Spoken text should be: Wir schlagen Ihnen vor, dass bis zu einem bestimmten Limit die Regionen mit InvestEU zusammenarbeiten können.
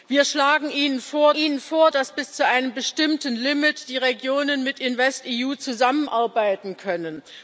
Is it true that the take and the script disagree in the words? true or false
true